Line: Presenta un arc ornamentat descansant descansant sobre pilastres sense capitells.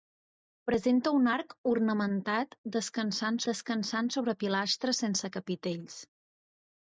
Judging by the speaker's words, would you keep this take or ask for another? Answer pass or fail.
pass